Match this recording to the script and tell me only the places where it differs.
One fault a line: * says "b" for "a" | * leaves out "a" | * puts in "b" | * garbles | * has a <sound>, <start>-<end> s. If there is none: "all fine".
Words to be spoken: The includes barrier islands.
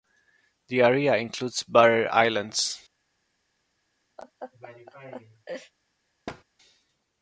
* puts in "area"
* has a laugh, 4.2-5.7 s
* has a thud, 6.3-6.4 s